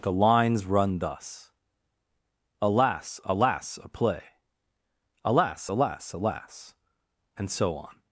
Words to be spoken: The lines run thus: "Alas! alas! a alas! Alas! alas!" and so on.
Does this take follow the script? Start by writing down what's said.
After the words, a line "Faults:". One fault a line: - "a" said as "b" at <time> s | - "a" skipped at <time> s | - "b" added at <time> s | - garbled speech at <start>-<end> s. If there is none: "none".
The lines run thus: "Alas! alas! a play alas! Alas! alas!" and so on.
Faults:
- "play" added at 3.9 s